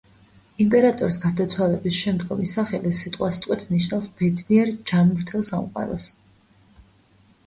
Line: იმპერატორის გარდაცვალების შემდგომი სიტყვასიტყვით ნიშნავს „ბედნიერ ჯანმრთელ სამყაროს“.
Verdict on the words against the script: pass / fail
fail